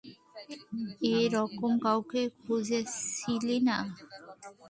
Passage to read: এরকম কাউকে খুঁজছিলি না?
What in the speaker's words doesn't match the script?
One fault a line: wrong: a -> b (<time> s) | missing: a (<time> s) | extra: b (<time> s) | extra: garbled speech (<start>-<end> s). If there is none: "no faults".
no faults